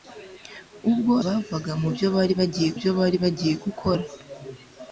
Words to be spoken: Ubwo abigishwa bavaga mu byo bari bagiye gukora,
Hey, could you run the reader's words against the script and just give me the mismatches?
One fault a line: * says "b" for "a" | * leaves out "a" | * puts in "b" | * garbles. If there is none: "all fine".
* leaves out "abigishwa"
* puts in "byo bari bagiye"